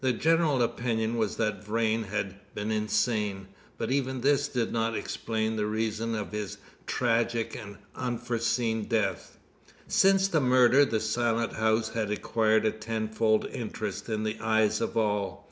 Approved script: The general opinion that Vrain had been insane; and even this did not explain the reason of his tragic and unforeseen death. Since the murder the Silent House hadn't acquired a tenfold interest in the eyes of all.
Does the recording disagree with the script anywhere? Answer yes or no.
yes